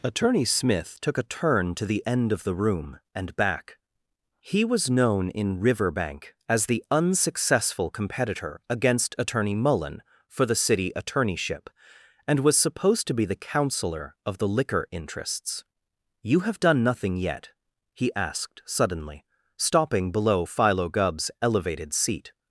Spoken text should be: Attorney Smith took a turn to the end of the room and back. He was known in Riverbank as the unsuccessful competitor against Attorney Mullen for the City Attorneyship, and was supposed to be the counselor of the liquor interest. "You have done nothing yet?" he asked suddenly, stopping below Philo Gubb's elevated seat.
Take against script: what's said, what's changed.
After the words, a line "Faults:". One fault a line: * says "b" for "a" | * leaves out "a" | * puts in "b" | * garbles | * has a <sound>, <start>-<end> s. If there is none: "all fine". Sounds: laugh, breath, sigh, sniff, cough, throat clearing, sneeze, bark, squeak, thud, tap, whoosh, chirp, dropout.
Attorney Smith took a turn to the end of the room and back. He was known in Riverbank as the unsuccessful competitor against Attorney Mullen for the City Attorneyship, and was supposed to be the counselor of the liquor interests. "You have done nothing yet?" he asked suddenly, stopping below Philo Gubb's elevated seat.
Faults:
* says "interests" for "interest"